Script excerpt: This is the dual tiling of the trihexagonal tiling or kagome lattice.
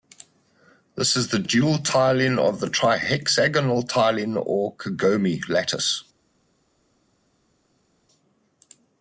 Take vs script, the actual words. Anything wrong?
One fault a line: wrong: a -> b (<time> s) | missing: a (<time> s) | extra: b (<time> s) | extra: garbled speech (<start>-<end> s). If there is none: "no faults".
no faults